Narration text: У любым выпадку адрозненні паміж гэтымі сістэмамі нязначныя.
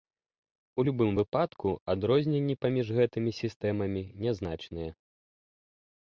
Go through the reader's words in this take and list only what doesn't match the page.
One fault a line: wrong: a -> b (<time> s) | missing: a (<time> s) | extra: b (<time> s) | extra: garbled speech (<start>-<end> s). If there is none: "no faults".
no faults